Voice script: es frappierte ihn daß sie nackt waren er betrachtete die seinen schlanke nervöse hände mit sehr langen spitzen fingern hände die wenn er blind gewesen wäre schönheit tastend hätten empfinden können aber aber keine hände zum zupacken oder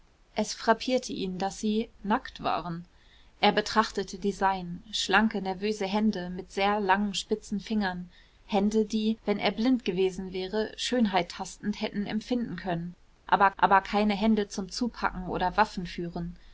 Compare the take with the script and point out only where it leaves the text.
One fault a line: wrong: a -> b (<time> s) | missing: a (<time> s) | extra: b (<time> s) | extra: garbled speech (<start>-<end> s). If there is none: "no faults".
no faults